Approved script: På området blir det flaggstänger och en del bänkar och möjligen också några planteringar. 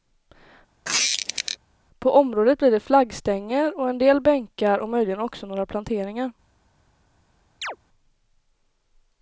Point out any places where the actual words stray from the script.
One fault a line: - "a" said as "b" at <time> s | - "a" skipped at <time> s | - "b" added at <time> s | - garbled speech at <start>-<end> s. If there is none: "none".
none